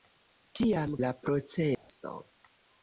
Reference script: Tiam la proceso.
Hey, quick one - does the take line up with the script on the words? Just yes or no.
yes